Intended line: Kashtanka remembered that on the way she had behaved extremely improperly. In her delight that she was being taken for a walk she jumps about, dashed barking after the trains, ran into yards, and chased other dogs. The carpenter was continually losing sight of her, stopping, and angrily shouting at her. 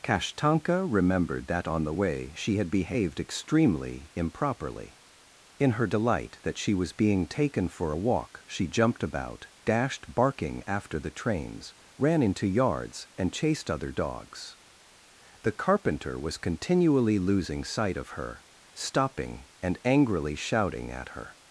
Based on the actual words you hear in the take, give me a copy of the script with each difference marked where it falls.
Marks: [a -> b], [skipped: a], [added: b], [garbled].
Kashtanka remembered that on the way she had behaved extremely improperly. In her delight that she was being taken for a walk she [jumps -> jumped] about, dashed barking after the trains, ran into yards, and chased other dogs. The carpenter was continually losing sight of her, stopping, and angrily shouting at her.